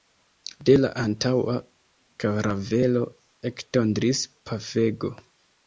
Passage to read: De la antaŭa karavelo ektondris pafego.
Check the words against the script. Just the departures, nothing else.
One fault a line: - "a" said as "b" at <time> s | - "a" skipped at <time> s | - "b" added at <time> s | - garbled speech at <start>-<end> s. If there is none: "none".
none